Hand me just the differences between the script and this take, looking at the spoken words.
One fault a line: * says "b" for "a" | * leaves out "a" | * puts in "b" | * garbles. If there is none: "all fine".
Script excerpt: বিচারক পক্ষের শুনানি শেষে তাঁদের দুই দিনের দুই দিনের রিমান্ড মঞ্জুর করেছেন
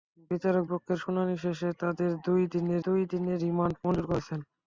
all fine